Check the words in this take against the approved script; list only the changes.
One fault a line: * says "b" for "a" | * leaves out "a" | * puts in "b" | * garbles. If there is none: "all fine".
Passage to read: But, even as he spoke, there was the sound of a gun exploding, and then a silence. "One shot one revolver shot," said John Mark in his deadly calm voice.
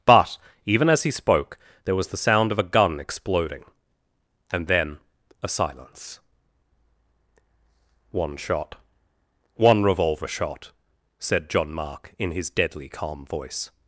all fine